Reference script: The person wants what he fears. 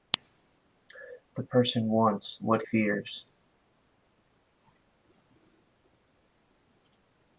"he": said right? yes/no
no